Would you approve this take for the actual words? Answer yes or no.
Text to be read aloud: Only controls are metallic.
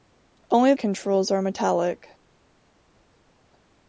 yes